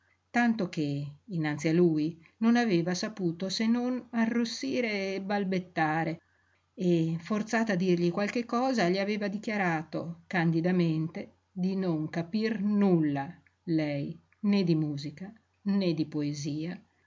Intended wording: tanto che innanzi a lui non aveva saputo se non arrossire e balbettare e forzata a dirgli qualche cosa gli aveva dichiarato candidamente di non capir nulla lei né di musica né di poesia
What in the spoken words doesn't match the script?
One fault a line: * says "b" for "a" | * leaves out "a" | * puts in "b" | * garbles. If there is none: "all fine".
all fine